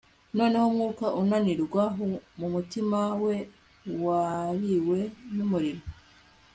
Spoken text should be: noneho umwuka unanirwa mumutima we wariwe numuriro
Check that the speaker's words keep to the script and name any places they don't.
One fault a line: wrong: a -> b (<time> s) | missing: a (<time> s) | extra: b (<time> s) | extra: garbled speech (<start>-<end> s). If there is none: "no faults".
no faults